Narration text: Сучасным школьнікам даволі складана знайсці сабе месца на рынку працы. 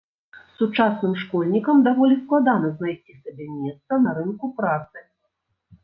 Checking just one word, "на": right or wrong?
right